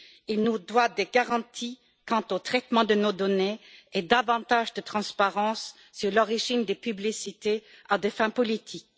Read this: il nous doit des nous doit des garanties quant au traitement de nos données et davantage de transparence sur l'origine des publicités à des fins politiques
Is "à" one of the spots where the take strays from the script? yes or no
no